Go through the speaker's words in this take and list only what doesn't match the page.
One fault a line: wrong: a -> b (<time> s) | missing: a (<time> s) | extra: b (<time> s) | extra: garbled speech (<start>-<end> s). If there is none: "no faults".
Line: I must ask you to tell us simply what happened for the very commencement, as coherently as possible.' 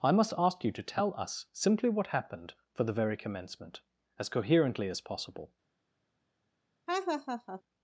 no faults